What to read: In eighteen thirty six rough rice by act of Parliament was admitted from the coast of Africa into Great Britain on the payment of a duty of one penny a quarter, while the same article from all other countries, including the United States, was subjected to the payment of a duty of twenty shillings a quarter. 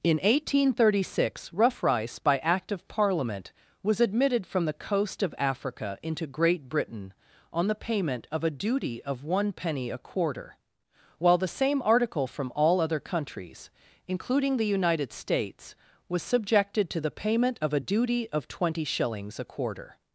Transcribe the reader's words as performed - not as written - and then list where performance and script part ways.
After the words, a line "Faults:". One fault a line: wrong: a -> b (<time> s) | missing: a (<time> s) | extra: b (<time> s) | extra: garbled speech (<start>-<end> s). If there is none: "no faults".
In eighteen thirty six rough rice by act of Parliament was admitted from the coast of Africa into Great Britain on the payment of a duty of one penny a quarter, while the same article from all other countries, including the United States, was subjected to the payment of a duty of twenty shillings a quarter.
Faults:
no faults